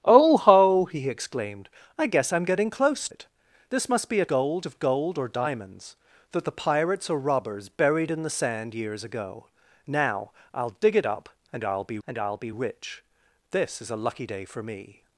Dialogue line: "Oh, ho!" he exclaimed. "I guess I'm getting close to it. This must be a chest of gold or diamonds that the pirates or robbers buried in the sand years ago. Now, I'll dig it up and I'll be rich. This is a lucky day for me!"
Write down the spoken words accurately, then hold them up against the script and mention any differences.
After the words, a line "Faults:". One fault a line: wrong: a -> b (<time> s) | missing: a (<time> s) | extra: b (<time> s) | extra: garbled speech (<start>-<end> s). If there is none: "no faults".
"Oh, ho!" he exclaimed. "I guess I'm getting close it. This must be a gold of gold or diamonds that the pirates or robbers buried in the sand years ago. Now, I'll dig it up and I'll be and I'll be rich. This is a lucky day for me!"
Faults:
missing: to (3.1 s)
wrong: chest -> gold (4.3 s)
extra: and I'll be (12.1 s)